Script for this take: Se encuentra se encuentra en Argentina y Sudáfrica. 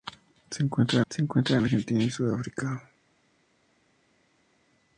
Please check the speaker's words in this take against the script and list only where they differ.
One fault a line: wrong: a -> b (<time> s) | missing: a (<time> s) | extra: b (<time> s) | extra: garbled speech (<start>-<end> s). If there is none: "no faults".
no faults